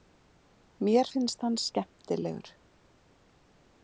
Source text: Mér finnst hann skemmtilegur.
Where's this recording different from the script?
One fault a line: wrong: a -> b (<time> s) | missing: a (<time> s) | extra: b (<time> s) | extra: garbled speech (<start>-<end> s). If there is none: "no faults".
no faults